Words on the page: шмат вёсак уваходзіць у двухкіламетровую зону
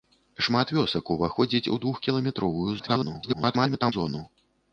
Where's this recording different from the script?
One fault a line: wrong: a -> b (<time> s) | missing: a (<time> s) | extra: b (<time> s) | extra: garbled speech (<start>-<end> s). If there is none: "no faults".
extra: garbled speech (2.8-3.9 s)